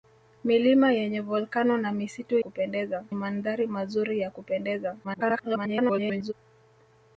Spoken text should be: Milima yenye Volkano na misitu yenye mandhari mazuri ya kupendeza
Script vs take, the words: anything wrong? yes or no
yes